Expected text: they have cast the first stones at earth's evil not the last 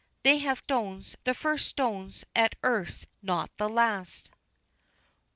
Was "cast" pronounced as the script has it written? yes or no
no